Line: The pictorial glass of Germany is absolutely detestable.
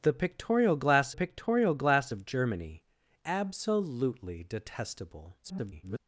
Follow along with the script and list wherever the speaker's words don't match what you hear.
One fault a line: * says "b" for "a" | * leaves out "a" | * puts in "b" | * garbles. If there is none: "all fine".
* puts in "pictorial glass"
* leaves out "is"
* garbles